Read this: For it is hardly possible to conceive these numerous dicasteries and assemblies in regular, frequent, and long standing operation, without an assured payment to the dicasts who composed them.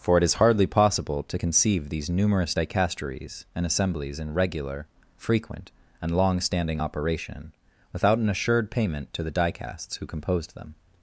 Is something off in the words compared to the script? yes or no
no